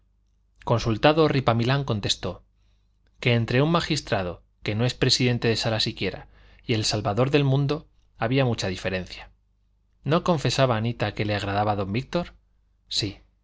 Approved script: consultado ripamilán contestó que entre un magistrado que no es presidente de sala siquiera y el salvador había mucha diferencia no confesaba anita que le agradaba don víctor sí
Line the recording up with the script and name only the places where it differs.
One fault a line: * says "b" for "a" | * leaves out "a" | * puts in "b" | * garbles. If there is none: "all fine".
* puts in "del mundo"